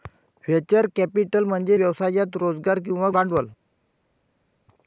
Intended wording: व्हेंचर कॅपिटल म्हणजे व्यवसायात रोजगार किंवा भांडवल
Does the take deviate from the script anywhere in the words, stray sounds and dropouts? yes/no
no